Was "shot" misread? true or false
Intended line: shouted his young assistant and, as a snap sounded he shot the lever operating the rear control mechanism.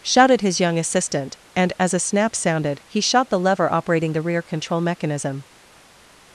false